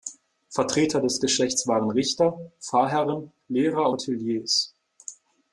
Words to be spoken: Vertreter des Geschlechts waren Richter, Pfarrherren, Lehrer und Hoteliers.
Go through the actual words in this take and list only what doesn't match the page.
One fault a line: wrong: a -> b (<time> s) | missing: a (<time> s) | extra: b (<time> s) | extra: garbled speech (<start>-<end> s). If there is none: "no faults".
missing: und (3.9 s)